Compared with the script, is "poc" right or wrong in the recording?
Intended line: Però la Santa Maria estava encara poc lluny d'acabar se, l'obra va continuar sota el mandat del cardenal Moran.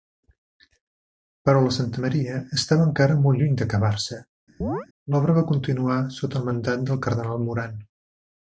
wrong